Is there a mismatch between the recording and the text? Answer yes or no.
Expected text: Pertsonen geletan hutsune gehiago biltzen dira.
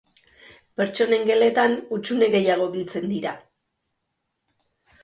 no